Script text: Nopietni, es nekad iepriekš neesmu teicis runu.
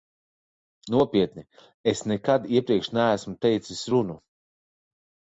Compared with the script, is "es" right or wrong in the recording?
right